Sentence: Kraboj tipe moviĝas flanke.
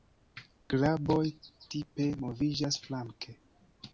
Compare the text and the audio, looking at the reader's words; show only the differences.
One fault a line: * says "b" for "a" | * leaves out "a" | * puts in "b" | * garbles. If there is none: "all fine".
all fine